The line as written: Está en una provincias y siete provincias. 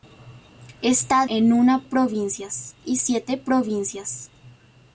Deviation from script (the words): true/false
false